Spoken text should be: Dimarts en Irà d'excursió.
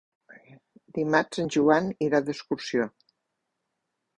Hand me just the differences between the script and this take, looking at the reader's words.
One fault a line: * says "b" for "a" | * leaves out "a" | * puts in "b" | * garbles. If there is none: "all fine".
* puts in "Joan"